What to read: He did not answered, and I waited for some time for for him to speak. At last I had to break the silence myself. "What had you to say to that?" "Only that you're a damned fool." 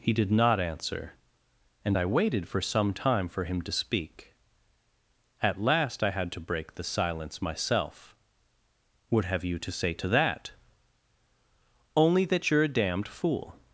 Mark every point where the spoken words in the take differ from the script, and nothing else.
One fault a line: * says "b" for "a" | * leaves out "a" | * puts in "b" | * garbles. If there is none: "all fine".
* says "answer" for "answered"
* leaves out "for"
* says "have" for "had"